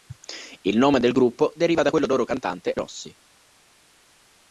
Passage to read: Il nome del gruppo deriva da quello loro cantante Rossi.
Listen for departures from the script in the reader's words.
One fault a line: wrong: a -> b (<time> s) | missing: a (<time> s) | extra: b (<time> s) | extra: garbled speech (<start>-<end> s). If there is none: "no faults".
no faults